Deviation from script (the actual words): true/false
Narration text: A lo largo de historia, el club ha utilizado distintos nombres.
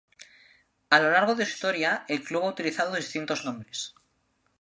false